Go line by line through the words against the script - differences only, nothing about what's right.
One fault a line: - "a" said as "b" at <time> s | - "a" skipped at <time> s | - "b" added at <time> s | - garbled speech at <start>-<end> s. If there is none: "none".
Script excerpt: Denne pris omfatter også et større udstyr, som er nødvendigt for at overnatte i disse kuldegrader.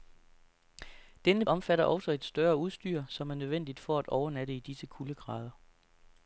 - "pris" skipped at 1.4 s